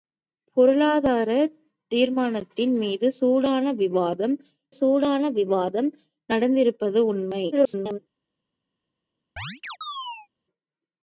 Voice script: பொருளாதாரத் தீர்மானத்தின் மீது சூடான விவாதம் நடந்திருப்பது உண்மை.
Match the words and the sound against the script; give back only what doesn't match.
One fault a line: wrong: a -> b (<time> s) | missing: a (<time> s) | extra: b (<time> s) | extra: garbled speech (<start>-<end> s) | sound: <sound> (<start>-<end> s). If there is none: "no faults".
extra: சூடான விவாதம் (4.7 s)
extra: garbled speech (7.5-8.0 s)
sound: chirp (9.4-10.3 s)